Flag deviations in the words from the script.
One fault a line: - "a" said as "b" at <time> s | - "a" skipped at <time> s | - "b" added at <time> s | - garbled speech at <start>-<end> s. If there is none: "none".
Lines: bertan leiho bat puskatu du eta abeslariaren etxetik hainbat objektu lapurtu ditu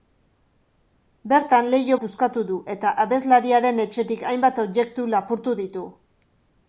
- "bat" skipped at 2.0 s